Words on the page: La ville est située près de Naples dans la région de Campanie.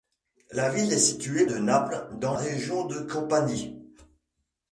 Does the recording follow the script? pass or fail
fail